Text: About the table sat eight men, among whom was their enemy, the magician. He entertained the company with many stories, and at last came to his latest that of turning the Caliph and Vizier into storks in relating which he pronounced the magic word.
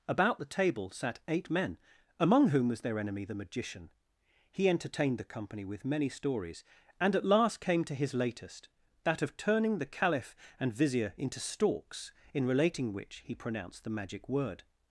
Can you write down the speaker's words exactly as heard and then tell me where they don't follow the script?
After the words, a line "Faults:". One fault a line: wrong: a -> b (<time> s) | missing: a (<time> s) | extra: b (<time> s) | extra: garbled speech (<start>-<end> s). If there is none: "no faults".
About the table sat eight men, among whom was their enemy, the magician. He entertained the company with many stories, and at last came to his latest that of turning the Caliph and Vizier into storks in relating which he pronounced the magic word.
Faults:
no faults